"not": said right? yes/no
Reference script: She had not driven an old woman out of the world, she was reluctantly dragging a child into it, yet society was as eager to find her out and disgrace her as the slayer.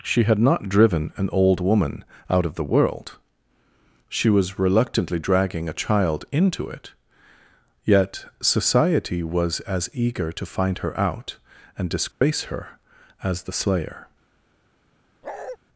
yes